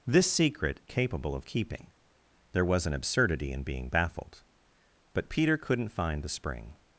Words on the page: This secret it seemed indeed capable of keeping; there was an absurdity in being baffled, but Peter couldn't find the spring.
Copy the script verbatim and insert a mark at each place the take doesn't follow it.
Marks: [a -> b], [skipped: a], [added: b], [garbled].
This secret [skipped: it seemed indeed] capable of keeping; there was an absurdity in being baffled, but Peter couldn't find the spring.